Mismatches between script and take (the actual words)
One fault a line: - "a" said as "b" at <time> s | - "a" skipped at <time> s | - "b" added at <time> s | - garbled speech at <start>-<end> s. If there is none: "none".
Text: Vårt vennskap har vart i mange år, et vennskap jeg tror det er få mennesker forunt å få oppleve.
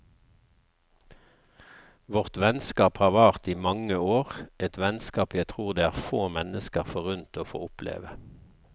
none